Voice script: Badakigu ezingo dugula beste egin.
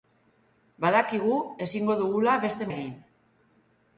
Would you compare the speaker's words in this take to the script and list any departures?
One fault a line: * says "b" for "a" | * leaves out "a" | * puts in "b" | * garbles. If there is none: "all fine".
all fine